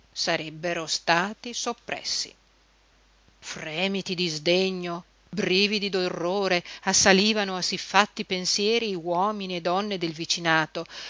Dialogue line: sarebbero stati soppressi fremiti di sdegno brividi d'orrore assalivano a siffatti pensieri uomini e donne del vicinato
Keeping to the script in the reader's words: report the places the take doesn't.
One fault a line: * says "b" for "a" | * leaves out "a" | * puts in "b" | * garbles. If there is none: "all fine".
all fine